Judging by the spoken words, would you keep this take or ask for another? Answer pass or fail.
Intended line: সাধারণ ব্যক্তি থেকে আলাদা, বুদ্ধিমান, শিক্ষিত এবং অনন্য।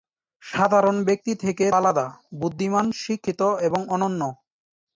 pass